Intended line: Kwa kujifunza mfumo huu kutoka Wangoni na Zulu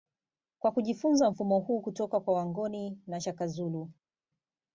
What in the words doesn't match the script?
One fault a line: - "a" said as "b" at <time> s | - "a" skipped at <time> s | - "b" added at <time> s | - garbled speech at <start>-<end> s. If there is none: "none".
- "kwa" added at 2.2 s
- "Shaka" added at 3.2 s